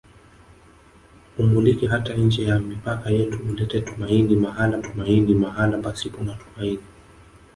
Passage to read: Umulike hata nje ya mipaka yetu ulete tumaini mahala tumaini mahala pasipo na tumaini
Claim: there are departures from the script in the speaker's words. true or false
false